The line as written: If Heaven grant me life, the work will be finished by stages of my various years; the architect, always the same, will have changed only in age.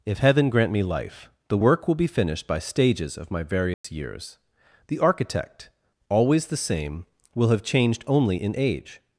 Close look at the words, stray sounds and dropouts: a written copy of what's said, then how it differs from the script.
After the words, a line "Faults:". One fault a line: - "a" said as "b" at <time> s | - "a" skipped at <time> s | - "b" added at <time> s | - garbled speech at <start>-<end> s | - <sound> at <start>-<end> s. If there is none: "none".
If Heaven grant me life, the work will be finished by stages of my various years; the architect, always the same, will have changed only in age.
Faults:
- dropout at 3.7-3.8 s